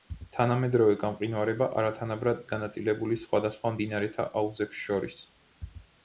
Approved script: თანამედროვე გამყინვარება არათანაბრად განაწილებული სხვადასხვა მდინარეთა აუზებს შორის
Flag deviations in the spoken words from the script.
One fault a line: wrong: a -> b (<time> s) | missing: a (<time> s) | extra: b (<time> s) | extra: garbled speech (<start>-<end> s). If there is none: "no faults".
no faults